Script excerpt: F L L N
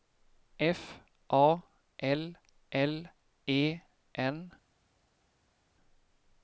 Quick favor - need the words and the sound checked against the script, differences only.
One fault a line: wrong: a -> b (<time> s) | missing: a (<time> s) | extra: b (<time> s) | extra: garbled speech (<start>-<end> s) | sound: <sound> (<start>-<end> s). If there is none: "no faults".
extra: A (1.3 s)
extra: E (3.5 s)